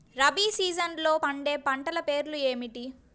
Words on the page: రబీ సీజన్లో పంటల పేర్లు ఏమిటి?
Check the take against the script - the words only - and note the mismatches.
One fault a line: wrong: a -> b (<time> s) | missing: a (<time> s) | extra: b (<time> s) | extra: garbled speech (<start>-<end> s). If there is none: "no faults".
extra: పండే (1.1 s)